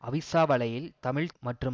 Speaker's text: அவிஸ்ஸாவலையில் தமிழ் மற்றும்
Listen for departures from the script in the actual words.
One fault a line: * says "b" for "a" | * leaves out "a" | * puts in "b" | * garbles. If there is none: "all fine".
all fine